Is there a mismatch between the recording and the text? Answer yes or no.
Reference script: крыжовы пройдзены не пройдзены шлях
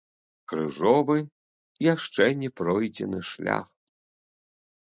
yes